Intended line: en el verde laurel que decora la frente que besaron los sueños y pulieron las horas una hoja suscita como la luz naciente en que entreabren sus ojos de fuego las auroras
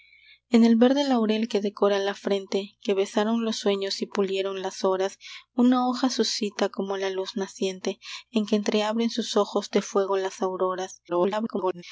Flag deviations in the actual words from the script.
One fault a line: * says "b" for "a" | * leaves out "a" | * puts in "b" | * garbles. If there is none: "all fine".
* garbles